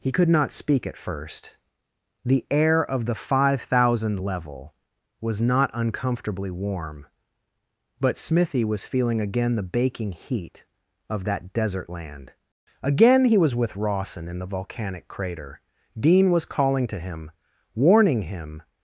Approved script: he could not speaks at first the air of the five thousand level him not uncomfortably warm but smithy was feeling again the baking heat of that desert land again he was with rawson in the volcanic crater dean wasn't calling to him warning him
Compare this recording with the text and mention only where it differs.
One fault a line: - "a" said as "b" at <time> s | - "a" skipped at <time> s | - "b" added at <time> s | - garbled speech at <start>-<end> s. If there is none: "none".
- "speaks" said as "speak" at 0.5 s
- "him" said as "was" at 5.2 s
- "wasn't" said as "was" at 16.3 s